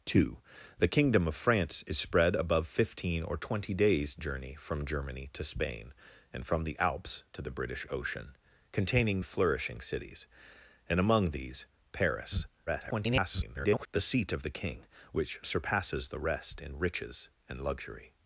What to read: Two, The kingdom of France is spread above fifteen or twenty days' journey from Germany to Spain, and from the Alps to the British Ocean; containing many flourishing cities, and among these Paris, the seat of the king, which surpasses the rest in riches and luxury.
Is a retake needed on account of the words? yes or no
yes